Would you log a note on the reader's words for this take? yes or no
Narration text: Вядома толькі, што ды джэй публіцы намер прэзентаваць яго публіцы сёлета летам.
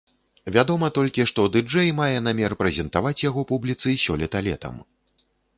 yes